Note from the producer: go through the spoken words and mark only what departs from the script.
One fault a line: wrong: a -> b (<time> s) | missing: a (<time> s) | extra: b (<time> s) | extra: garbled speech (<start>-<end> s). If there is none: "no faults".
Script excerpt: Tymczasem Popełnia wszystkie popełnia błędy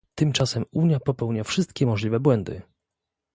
extra: Unia (0.7 s)
wrong: popełnia -> możliwe (1.9 s)